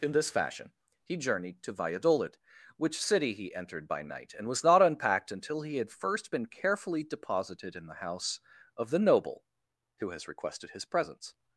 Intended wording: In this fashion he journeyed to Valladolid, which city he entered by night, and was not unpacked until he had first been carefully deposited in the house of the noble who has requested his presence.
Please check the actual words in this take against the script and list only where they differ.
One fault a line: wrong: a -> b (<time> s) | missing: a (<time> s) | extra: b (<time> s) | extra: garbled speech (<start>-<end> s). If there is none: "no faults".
no faults